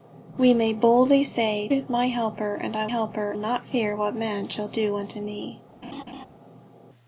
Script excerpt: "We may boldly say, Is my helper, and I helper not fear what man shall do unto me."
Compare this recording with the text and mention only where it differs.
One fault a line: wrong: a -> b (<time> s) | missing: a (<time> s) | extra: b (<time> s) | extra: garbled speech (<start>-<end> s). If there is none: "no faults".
no faults